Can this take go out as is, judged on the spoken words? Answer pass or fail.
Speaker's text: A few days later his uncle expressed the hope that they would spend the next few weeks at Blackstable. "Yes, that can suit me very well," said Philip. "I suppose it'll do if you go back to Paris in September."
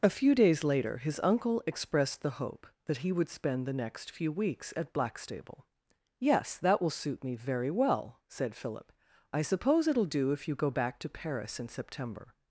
fail